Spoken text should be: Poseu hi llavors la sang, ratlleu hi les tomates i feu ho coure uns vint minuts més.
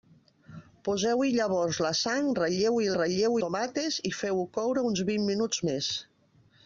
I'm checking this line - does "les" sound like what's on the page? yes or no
no